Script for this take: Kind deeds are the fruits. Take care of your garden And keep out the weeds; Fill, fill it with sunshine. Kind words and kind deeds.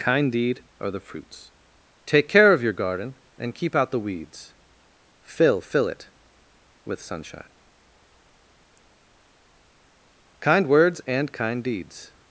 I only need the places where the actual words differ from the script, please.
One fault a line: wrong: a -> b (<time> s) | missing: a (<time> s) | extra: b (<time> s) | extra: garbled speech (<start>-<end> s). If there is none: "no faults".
wrong: deeds -> deed (0.3 s)